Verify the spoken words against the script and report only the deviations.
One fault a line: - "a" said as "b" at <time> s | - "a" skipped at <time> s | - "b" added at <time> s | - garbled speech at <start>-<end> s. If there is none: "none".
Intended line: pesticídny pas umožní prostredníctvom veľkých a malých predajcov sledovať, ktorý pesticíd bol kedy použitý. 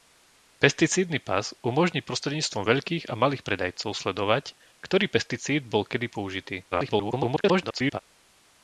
- garbled speech at 6.7-8.0 s